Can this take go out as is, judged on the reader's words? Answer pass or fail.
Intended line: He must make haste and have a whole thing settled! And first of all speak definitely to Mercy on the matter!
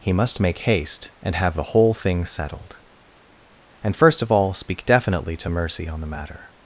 fail